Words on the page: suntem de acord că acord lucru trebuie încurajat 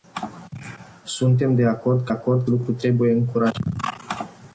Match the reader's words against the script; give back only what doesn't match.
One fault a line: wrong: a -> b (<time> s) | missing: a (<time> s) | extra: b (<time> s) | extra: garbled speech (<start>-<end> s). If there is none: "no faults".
no faults